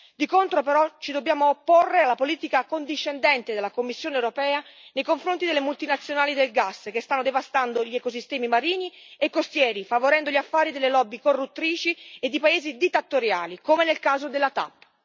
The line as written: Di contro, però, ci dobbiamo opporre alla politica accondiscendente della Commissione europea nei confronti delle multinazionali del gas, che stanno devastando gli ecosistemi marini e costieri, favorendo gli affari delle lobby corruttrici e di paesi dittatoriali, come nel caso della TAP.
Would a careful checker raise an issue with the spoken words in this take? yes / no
no